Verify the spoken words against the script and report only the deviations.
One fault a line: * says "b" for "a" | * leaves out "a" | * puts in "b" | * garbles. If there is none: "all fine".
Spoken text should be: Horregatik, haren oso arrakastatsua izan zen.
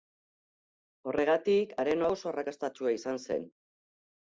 all fine